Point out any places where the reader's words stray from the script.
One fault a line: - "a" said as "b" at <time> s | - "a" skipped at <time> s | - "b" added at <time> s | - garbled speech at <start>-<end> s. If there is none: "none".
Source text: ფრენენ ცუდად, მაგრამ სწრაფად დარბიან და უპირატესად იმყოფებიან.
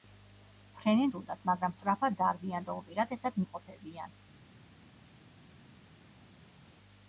none